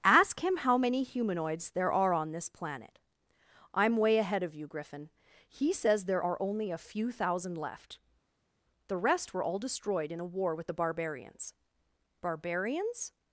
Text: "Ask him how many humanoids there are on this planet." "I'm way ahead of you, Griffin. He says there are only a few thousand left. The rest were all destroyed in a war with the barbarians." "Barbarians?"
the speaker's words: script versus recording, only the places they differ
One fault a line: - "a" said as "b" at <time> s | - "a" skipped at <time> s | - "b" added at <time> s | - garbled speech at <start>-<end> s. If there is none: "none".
none